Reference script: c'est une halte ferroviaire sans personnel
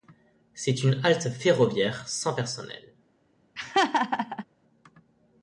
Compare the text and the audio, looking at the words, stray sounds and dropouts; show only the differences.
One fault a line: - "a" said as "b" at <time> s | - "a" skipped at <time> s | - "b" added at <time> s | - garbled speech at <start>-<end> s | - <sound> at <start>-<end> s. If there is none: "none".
- laugh at 3.6-4.4 s